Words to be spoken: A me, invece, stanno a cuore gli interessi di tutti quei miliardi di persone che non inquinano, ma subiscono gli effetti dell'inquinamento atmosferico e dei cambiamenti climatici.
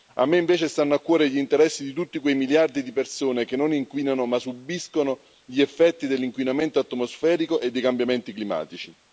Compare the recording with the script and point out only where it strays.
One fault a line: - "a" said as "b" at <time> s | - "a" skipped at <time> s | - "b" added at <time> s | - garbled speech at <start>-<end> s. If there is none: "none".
none